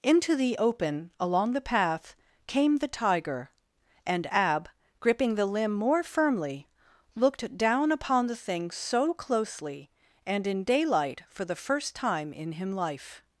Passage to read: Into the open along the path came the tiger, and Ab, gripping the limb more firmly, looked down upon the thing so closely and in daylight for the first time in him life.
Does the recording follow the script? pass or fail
pass